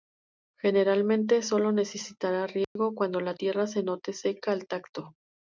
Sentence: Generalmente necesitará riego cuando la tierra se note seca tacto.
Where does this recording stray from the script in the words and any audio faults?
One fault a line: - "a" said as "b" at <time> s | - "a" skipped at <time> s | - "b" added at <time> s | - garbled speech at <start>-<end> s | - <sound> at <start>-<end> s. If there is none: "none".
- "sólo" added at 1.4 s
- dropout at 2.6-2.8 s
- "al" added at 4.5 s